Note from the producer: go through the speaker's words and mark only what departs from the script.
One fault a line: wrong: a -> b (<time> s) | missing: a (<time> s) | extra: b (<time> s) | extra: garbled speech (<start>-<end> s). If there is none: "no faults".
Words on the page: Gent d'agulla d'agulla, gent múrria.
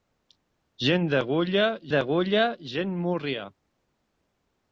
no faults